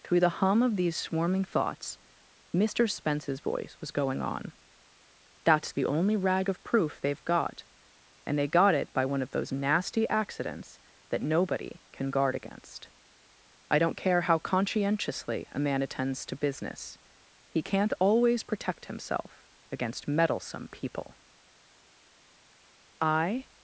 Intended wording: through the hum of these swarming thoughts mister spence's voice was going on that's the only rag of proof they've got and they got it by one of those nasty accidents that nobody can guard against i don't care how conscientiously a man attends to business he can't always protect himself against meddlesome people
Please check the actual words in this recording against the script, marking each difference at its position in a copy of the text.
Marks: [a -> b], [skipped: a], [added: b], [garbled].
through the hum of these swarming thoughts mister spence's voice was going on that's the only rag of proof they've got and they got it by one of those nasty accidents that nobody can guard against i don't care how conscientiously a man attends to business he can't always protect himself against meddlesome people [added: i]